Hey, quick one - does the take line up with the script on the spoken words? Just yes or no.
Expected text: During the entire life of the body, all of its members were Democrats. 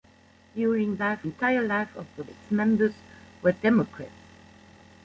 no